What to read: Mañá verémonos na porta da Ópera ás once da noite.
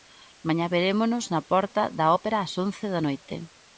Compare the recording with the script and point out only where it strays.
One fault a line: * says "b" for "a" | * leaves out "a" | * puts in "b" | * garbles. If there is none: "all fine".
all fine